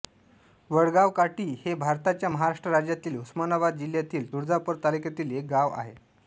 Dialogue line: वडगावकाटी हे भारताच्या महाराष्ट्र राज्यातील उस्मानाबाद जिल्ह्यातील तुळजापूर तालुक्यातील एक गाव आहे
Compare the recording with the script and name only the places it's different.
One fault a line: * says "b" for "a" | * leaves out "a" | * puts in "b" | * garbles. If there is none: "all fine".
all fine